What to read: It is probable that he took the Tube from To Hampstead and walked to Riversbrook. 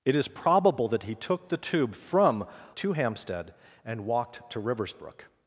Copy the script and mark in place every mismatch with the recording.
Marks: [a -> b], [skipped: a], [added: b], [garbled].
It is probable that he took the Tube from To Hampstead and walked to Riversbrook.